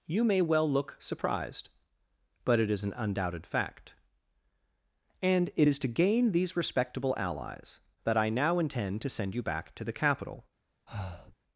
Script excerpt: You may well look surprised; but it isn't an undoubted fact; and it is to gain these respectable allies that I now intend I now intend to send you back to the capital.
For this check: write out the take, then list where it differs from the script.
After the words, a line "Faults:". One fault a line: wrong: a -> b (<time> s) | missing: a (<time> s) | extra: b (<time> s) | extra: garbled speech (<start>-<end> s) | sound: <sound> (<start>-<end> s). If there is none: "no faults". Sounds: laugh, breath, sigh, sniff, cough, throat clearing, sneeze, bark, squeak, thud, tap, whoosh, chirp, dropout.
You may well look surprised; but it is an undoubted fact; and it is to gain these respectable allies that I now intend to send you back to the capital.
Faults:
wrong: isn't -> is (2.7 s)
missing: I now intend (9.0 s)
sound: breath (10.9-11.4 s)